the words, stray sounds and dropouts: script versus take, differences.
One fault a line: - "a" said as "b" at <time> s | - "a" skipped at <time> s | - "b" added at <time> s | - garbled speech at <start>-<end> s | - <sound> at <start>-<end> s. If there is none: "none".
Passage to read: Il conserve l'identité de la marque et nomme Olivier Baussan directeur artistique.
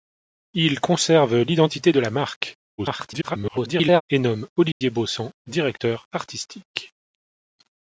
- garbled speech at 2.8-4.0 s
- dropout at 4.7-4.8 s